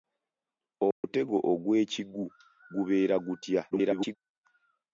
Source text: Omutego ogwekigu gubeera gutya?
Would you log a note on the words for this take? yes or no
yes